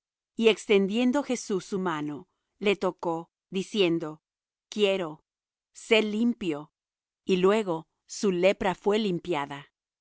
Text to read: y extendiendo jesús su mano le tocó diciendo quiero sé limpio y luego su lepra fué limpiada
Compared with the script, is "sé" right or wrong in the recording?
right